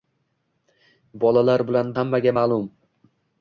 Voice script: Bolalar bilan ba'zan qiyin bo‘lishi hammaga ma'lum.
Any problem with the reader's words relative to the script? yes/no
yes